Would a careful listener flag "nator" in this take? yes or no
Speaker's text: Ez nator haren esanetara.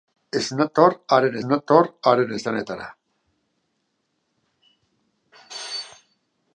no